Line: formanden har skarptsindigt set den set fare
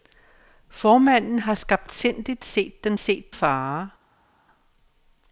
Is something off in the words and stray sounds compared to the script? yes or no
no